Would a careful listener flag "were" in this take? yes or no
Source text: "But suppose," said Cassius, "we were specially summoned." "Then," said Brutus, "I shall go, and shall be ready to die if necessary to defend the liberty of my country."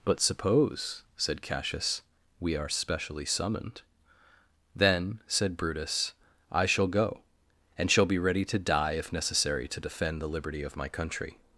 yes